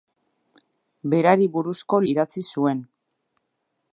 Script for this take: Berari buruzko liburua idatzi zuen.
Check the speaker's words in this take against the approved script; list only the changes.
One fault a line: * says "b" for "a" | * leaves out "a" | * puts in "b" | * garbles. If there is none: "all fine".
* leaves out "liburua"